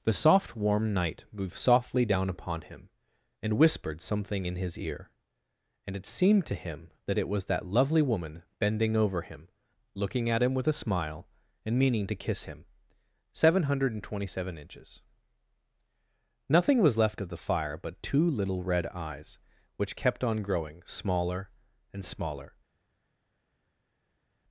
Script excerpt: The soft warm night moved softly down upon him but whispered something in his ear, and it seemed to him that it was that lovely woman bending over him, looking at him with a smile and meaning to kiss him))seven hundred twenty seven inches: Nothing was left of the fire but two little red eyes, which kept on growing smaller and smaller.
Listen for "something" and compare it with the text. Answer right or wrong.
right